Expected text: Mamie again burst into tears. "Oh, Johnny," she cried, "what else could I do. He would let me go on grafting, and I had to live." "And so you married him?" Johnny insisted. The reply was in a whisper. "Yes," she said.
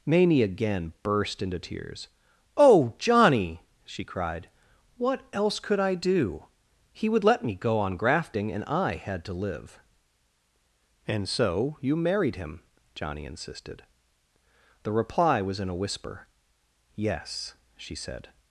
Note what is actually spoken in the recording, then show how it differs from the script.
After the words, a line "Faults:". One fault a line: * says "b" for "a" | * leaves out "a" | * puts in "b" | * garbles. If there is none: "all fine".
Mamie again burst into tears. "Oh, Johnny," she cried, "what else could I do. He would let me go on grafting, and I had to live." "And so you married him?" Johnny insisted. The reply was in a whisper. "Yes," she said.
Faults:
all fine